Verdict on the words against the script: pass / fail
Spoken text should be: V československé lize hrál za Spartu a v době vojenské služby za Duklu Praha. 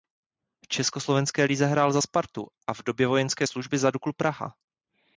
pass